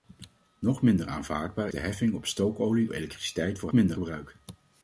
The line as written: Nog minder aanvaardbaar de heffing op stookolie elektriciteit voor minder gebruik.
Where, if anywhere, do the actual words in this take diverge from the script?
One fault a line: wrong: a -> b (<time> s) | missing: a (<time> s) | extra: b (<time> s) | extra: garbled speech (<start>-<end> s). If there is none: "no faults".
no faults